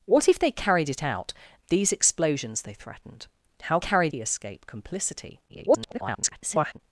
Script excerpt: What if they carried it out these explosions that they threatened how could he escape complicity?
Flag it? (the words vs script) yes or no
yes